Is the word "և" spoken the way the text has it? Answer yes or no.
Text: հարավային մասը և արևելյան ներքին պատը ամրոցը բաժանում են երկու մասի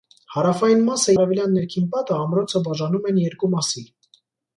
no